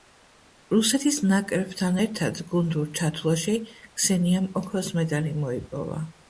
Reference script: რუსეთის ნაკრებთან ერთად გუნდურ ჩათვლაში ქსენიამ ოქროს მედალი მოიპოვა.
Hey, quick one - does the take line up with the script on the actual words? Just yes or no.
yes